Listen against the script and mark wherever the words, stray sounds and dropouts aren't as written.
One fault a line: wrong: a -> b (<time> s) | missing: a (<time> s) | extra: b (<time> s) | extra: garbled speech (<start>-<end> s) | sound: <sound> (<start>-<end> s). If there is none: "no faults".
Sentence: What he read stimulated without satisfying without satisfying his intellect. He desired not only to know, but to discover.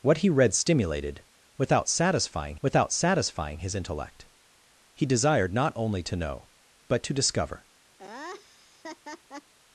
sound: laugh (8.0-9.5 s)